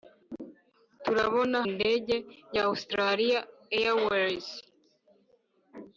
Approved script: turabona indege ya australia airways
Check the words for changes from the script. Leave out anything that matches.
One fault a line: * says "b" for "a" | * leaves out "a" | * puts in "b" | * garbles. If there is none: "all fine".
all fine